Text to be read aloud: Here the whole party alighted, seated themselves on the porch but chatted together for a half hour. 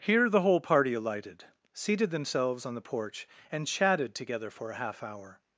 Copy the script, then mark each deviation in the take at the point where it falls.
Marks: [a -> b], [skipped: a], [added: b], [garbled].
Here the whole party alighted, seated themselves on the porch [but -> and] chatted together for a half hour.